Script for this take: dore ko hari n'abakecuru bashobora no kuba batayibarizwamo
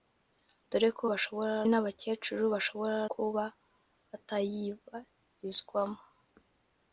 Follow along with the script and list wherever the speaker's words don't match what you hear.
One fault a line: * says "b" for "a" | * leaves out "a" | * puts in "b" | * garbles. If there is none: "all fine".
* says "bashobora" for "hari"
* leaves out "no"